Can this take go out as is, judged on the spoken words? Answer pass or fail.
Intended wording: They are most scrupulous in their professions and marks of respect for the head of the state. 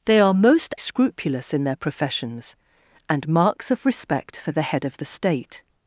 pass